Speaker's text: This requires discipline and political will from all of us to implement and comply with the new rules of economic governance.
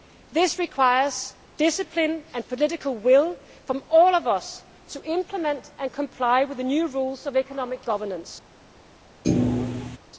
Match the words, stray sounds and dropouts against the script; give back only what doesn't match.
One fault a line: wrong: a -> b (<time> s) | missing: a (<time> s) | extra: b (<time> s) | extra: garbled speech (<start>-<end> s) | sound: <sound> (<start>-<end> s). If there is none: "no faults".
sound: thud (9.2-10.0 s)